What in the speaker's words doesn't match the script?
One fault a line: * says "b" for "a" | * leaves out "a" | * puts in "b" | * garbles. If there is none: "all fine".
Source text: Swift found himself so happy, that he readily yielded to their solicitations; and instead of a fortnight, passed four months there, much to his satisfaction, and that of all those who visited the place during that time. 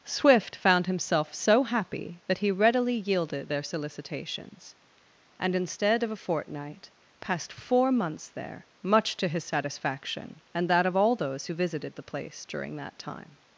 * leaves out "to"